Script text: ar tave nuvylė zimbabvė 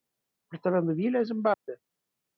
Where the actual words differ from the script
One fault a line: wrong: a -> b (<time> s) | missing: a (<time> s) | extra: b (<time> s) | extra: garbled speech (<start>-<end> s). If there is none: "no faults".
no faults